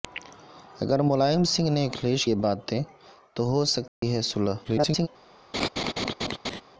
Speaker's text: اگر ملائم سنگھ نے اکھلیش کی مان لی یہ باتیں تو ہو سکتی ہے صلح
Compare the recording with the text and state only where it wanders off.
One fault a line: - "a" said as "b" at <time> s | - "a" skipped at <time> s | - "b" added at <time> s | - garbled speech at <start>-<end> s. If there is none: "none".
- "کی مان لی" skipped at 2.2 s
- garbled speech at 4.6-5.1 s